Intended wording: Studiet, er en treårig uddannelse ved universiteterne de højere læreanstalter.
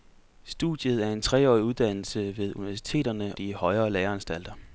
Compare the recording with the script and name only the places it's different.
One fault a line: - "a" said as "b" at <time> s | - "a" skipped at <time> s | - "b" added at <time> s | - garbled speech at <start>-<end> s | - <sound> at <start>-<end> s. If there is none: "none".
none